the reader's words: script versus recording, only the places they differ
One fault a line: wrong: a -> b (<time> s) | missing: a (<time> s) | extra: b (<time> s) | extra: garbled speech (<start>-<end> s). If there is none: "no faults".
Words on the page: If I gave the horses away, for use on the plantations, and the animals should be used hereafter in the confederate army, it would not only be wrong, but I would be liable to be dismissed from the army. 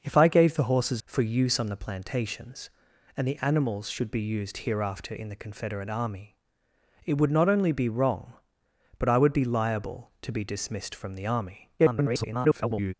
missing: away (1.0 s)
extra: garbled speech (11.8-12.9 s)